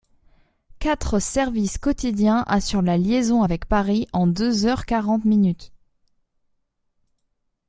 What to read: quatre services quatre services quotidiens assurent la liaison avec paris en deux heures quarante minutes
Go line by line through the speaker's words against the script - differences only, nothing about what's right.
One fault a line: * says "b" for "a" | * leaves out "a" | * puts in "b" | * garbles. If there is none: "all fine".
* leaves out "quatre services"